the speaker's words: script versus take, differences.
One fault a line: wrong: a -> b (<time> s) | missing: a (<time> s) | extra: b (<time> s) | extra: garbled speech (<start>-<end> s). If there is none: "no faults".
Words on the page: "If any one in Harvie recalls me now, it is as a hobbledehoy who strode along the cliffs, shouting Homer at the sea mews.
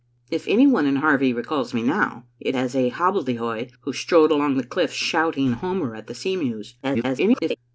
missing: is (2.5 s)
extra: garbled speech (6.8-7.6 s)